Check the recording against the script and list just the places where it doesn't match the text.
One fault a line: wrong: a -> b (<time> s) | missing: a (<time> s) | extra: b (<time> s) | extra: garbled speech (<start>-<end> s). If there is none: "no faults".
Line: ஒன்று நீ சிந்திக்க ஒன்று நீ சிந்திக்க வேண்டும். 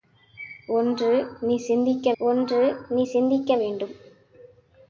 no faults